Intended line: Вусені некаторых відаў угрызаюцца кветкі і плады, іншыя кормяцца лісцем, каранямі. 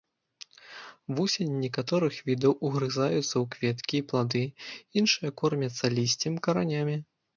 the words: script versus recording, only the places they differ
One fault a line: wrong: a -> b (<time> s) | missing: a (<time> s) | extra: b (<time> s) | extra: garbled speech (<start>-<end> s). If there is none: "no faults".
extra: ў (3.2 s)